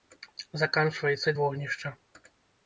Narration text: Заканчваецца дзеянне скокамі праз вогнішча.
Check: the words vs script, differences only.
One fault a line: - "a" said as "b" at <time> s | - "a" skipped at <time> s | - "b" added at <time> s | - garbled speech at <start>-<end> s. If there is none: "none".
- "дзеянне скокамі праз" skipped at 1.3 s